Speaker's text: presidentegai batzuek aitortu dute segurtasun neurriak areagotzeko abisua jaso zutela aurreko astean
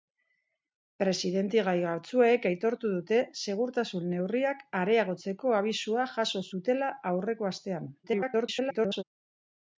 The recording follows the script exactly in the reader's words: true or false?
false